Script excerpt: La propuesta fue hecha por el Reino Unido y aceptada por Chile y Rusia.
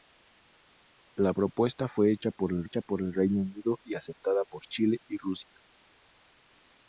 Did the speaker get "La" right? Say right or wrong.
right